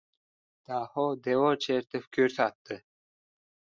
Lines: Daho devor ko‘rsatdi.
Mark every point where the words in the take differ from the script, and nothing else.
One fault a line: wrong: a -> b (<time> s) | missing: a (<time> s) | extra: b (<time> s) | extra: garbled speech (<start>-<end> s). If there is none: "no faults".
extra: chertib (1.7 s)